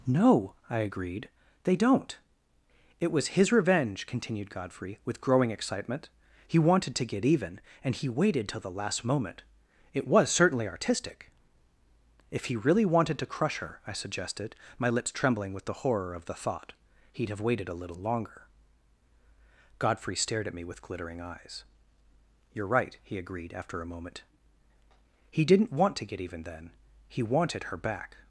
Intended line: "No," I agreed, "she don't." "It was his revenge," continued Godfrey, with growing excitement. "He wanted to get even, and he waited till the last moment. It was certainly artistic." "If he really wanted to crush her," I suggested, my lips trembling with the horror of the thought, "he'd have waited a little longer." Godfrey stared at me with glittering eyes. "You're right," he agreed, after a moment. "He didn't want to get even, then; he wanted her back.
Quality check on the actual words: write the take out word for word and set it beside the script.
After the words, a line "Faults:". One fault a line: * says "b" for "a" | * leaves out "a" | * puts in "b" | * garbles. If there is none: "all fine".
"No," I agreed, "they don't." "It was his revenge," continued Godfrey, with growing excitement. "He wanted to get even, and he waited till the last moment. It was certainly artistic." "If he really wanted to crush her," I suggested, my lips trembling with the horror of the thought, "he'd have waited a little longer." Godfrey stared at me with glittering eyes. "You're right," he agreed, after a moment. "He didn't want to get even, then; he wanted her back.
Faults:
* says "they" for "she"